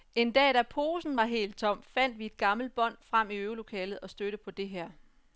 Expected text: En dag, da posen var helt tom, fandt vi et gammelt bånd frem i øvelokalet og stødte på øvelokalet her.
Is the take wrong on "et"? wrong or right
right